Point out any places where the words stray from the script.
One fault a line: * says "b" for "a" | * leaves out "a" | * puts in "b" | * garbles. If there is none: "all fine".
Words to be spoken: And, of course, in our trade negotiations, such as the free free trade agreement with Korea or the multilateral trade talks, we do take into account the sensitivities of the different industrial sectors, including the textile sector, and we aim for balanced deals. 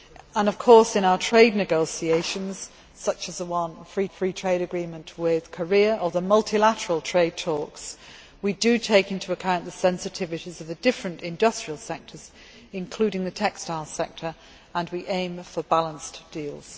all fine